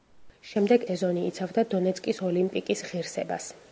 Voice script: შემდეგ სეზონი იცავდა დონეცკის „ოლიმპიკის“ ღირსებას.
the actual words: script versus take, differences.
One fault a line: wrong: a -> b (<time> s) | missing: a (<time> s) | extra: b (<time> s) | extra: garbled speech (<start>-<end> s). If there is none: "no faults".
no faults